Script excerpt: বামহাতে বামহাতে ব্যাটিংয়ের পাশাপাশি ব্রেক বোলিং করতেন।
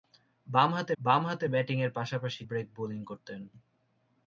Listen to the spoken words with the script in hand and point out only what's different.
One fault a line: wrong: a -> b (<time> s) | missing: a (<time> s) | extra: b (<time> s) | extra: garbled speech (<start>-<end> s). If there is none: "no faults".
no faults